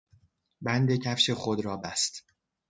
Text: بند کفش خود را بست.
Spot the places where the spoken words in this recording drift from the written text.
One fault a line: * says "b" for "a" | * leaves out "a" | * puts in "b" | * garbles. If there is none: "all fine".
all fine